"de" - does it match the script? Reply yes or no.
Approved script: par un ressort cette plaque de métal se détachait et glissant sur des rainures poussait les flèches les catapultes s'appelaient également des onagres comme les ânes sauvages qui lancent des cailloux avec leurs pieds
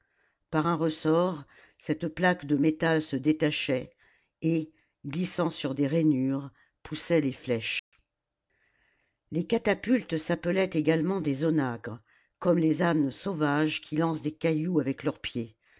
yes